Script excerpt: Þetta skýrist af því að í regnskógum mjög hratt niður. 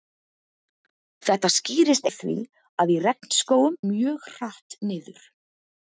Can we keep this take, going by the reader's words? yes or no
yes